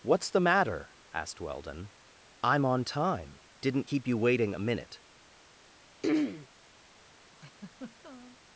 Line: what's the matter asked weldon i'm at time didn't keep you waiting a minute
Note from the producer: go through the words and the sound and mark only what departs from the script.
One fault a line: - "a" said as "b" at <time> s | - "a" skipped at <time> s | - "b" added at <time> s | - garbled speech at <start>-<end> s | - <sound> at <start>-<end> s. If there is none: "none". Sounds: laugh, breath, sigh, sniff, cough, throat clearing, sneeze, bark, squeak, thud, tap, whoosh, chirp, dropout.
- "at" said as "on" at 2.6 s
- throat clearing at 6.0-6.5 s
- laugh at 7.3-8.4 s